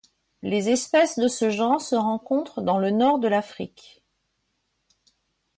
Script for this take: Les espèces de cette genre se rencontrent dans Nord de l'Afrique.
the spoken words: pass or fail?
fail